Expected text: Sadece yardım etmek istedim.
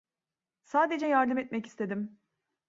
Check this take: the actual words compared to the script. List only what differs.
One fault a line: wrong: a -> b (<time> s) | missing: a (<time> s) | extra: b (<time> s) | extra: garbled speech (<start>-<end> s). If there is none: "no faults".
no faults